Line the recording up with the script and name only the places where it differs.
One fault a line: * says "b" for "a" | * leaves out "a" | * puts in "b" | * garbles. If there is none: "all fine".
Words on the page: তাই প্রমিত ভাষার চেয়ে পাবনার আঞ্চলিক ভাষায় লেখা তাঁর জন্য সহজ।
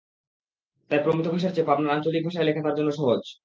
all fine